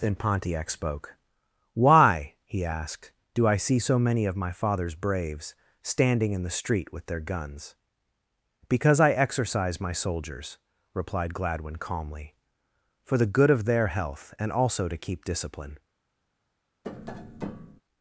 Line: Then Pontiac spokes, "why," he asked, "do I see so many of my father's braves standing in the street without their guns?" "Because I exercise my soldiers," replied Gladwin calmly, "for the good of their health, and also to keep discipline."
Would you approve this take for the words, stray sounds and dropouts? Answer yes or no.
no